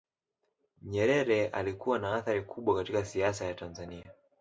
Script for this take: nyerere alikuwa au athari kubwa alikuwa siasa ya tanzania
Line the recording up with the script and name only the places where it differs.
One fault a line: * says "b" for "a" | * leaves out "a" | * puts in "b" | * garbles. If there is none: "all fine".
* says "na" for "au"
* says "katika" for "alikuwa"